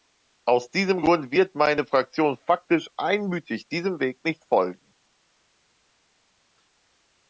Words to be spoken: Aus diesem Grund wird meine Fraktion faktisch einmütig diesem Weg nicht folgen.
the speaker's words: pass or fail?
pass